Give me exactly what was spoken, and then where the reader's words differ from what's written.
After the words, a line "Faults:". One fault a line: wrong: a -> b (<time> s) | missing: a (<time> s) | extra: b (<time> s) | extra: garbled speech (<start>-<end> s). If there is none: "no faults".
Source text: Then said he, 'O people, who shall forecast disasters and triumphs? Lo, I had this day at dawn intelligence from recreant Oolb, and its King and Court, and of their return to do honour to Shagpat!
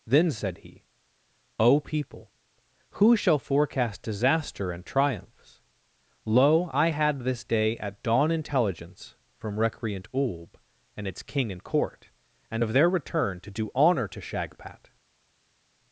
Then said he, 'O people, who shall forecast disaster and triumphs? Lo, I had this day at dawn intelligence from recreant Oolb, and its King and Court, and of their return to do honour to Shagpat!
Faults:
wrong: disasters -> disaster (4.0 s)